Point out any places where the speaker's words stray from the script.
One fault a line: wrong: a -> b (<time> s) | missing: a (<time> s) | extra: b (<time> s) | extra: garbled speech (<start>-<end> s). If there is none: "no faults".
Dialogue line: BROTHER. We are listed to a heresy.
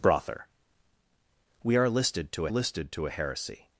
extra: listed to (2.5 s)